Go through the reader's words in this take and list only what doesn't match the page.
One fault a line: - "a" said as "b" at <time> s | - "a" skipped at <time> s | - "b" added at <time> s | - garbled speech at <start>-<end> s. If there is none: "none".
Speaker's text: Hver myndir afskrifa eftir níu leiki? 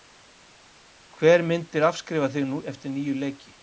- "þig" added at 2.4 s